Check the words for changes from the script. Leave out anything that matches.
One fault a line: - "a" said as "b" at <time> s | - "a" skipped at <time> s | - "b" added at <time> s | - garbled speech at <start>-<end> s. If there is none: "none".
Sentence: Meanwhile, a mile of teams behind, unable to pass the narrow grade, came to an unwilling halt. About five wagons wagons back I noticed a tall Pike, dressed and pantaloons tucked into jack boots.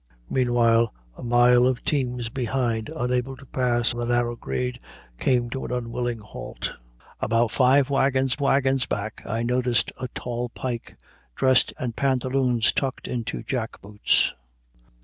none